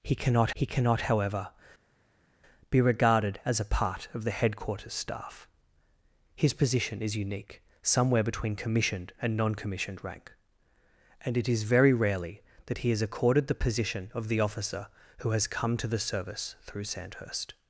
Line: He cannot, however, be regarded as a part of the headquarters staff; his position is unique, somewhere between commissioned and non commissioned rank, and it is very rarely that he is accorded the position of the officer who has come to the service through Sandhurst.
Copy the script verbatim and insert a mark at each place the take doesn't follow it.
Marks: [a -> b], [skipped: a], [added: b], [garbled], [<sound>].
He cannot, [added: he cannot] however, be regarded as a part of the headquarters staff; his position is unique, somewhere between commissioned and non commissioned rank, and it is very rarely that he is accorded the position of the officer who has come to the service through Sandhurst.